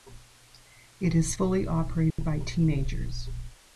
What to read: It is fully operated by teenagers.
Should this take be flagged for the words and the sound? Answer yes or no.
yes